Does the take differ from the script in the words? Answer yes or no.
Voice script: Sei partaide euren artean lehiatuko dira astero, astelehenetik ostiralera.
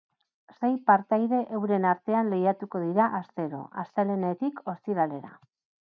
no